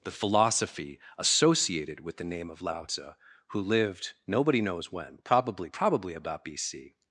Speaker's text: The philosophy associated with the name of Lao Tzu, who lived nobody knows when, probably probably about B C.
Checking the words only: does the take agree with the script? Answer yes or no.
yes